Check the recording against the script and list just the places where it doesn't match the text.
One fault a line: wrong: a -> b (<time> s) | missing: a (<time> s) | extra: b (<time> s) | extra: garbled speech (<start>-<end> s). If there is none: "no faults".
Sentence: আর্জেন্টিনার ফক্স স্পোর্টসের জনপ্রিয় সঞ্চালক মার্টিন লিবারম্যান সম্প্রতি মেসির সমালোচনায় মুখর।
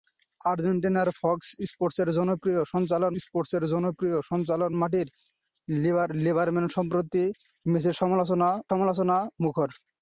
extra: স্পোর্টসের জনপ্রিয় সঞ্চালক (3.2 s)
extra: সমালোচনায় (8.7 s)